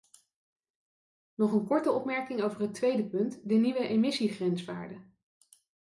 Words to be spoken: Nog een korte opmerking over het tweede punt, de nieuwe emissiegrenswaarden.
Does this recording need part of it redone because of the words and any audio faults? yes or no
no